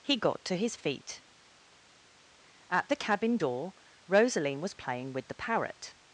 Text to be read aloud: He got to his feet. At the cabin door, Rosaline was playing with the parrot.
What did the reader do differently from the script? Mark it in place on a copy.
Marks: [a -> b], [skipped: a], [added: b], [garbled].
He got to his feet. At the cabin door, Rosaline was playing with the parrot.